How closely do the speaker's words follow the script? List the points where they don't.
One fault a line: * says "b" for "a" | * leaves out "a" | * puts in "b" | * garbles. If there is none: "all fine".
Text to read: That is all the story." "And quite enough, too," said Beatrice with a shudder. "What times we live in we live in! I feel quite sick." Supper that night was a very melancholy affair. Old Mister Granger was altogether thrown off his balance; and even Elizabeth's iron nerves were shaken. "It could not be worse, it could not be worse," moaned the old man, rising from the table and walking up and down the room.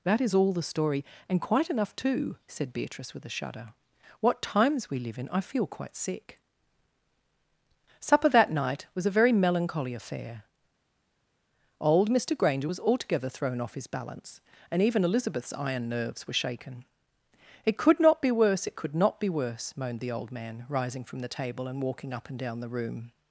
* leaves out "we live in"